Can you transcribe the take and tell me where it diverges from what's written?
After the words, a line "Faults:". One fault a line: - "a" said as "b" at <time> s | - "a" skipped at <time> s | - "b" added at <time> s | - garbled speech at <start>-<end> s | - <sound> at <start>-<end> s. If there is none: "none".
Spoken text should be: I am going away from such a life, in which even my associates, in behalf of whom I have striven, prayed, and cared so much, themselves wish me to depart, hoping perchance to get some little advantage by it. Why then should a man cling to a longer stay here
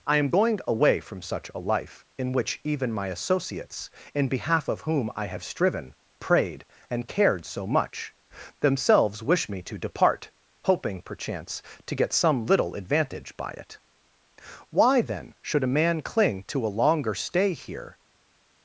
I am going away from such a life, in which even my associates, in behalf of whom I have striven, prayed, and cared so much, themselves wish me to depart, hoping perchance to get some little advantage by it. Why then should a man cling to a longer stay here
Faults:
none